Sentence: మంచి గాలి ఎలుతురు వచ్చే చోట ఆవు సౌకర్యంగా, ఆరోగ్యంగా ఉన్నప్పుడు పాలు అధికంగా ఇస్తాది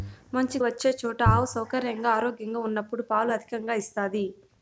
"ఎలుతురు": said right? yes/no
no